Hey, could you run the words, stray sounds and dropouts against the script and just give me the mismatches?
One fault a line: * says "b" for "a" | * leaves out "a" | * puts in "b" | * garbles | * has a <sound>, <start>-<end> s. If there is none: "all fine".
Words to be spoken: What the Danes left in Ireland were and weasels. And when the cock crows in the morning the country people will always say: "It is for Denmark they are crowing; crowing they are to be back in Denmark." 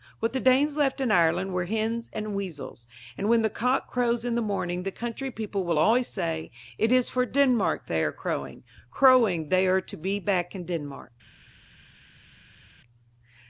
* puts in "hens"